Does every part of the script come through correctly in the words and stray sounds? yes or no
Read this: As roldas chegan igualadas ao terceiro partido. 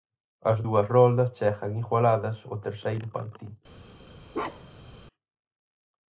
no